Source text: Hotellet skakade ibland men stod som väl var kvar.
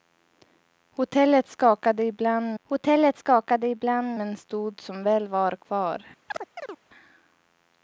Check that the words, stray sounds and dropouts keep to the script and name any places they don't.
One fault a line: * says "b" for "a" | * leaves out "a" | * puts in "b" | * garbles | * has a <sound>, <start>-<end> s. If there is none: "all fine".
* puts in "hotellet skakade ibland"
* has a chirp, 6.3-6.8 s